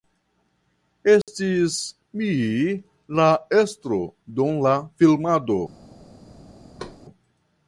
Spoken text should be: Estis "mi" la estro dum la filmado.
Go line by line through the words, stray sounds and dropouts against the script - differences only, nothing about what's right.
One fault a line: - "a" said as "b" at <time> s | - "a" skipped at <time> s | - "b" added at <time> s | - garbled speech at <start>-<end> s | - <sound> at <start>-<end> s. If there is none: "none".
- dropout at 1.2-1.3 s
- thud at 6.8-7.0 s